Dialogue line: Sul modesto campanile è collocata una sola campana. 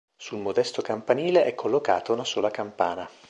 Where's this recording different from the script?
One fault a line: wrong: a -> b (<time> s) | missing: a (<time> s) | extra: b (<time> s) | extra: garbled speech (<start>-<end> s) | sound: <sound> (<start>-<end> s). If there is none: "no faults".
no faults